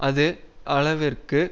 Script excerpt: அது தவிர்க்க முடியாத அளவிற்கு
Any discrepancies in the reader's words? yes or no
yes